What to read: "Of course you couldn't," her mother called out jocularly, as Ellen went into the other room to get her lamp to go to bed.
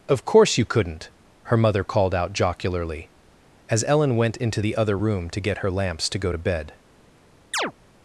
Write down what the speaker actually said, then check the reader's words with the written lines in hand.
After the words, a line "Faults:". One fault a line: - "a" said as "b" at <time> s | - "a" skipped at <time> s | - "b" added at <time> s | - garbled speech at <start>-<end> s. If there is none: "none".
"Of course you couldn't," her mother called out jocularly, as Ellen went into the other room to get her lamps to go to bed.
Faults:
- "lamp" said as "lamps" at 5.7 s